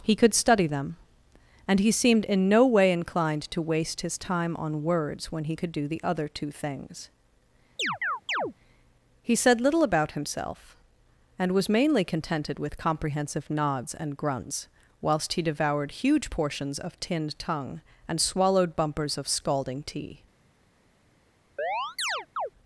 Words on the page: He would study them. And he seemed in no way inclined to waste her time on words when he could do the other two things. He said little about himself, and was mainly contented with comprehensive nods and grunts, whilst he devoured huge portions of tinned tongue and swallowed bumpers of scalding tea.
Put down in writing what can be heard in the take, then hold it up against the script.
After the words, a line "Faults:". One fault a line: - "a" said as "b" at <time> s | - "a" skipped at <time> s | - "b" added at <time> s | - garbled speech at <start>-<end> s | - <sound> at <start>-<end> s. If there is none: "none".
He could study them. And he seemed in no way inclined to waste his time on words when he could do the other two things. He said little about himself, and was mainly contented with comprehensive nods and grunts, whilst he devoured huge portions of tinned tongue and swallowed bumpers of scalding tea.
Faults:
- "would" said as "could" at 0.1 s
- "her" said as "his" at 4.0 s
- chirp at 7.8-8.5 s
- chirp at 21.6-22.5 s